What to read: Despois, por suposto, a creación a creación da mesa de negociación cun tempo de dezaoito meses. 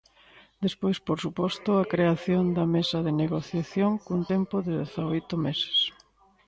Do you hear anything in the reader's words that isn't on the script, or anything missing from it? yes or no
yes